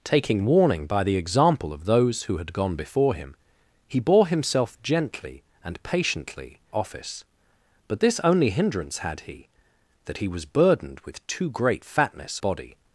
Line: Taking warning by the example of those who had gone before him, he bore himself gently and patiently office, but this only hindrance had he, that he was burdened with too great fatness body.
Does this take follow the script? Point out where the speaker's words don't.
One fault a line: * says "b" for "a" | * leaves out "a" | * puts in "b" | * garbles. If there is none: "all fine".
all fine